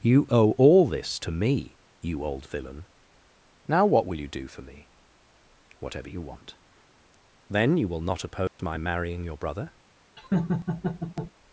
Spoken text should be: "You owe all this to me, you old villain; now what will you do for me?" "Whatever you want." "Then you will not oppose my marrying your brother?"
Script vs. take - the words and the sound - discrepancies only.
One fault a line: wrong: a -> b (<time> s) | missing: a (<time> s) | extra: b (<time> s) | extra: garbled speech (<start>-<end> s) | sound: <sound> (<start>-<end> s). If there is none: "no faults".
sound: dropout (8.5-8.6 s)
sound: laugh (10.2-11.3 s)